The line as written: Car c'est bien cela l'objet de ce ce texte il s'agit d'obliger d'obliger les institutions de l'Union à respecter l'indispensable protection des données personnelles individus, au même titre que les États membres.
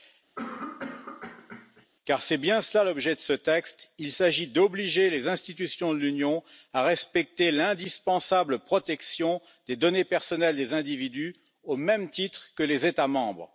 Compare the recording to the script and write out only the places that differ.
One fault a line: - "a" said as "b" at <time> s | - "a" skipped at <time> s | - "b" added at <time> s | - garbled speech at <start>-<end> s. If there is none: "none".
- "ce" skipped at 3.3 s
- "d'obliger" skipped at 5.1 s
- "des" added at 10.6 s